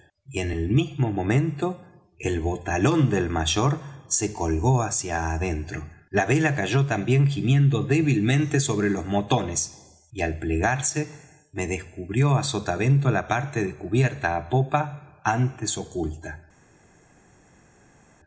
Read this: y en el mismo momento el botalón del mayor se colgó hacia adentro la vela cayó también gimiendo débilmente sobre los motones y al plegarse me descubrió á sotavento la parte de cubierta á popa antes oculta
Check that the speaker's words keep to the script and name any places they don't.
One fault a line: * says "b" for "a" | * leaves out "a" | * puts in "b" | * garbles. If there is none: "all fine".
all fine